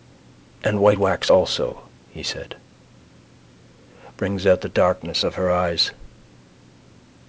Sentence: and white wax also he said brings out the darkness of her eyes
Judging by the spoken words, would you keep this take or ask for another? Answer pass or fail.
pass